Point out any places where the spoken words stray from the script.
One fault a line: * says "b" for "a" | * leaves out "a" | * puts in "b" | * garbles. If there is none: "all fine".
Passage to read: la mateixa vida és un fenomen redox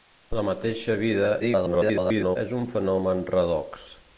* garbles